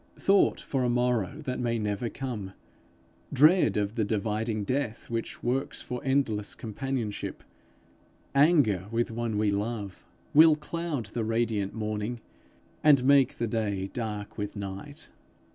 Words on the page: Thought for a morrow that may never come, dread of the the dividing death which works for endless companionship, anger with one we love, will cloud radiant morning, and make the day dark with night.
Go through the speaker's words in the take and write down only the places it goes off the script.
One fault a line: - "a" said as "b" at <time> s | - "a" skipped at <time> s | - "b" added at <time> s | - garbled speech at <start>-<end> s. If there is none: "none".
- "the" skipped at 4.0 s
- "the" added at 11.1 s